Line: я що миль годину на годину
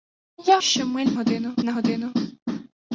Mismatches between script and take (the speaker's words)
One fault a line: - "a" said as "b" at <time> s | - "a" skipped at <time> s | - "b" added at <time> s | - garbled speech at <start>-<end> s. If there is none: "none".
none